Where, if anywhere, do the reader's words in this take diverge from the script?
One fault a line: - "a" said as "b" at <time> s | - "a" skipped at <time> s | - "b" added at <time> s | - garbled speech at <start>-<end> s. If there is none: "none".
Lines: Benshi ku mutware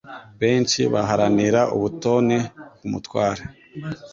- "baharanira ubutoni" added at 0.9 s